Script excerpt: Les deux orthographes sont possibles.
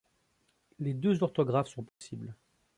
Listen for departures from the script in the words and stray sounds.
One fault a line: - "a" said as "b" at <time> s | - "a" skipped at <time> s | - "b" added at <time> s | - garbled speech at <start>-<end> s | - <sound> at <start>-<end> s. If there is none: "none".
- dropout at 1.9-2.0 s